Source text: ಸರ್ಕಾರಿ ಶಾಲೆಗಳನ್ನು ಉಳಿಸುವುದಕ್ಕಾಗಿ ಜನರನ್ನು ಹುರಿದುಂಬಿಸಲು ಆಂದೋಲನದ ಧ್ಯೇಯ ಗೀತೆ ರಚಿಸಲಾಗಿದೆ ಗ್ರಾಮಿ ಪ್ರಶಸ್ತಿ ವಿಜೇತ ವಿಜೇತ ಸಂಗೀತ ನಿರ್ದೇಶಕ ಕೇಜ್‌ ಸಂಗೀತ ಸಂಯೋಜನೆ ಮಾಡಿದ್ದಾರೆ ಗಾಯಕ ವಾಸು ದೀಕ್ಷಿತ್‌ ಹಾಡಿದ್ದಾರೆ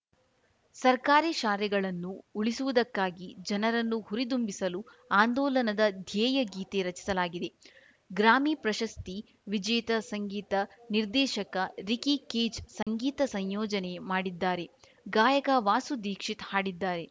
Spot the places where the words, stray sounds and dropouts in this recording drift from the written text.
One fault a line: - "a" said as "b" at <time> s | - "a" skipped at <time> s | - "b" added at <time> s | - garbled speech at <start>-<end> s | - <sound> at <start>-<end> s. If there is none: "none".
- "ವಿಜೇತ" skipped at 9.9 s
- "ರಿಕಿ" added at 11.9 s
- dropout at 12.8-12.9 s